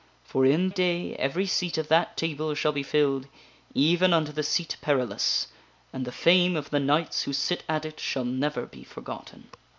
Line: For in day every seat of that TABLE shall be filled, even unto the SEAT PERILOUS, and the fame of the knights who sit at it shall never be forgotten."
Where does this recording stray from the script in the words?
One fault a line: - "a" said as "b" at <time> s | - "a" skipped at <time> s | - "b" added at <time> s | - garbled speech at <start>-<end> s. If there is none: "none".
none